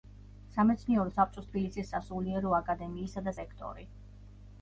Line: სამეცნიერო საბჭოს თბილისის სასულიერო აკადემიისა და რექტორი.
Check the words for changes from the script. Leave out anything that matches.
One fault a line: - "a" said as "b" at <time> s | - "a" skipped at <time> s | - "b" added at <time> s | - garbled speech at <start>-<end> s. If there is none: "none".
none